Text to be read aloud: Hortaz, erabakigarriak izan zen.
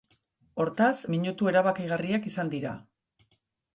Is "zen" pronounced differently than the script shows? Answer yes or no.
yes